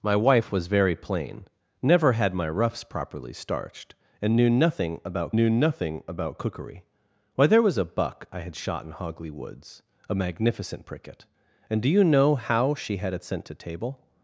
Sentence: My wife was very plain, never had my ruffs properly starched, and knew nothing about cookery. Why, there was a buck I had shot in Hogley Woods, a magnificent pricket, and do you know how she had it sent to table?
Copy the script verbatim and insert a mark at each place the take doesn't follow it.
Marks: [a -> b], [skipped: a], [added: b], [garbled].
My wife was very plain, never had my ruffs properly starched, and knew nothing about [added: knew nothing about] cookery. Why, there was a buck I had shot in Hogley Woods, a magnificent pricket, and do you know how she had it sent to table?